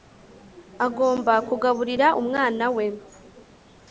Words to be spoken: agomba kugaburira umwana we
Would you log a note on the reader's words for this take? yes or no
no